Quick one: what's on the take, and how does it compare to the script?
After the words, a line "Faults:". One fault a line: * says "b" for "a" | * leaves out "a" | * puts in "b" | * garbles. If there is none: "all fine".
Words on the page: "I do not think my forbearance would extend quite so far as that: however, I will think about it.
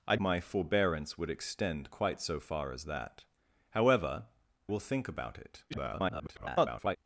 "I my forbearance would extend quite so far as that: however, will think about it. [garbled]
Faults:
* leaves out "do not think"
* leaves out "I"
* garbles